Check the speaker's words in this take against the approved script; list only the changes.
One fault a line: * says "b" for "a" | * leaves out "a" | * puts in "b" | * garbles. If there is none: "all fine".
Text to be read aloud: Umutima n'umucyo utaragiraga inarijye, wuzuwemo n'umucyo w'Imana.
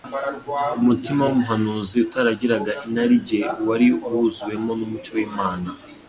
* says "w'umuhanuzi" for "n'umucyo"
* puts in "wari"